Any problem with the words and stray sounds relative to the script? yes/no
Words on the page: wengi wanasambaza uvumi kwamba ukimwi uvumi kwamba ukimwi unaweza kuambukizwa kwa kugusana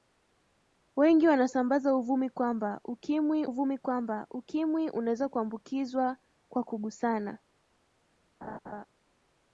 yes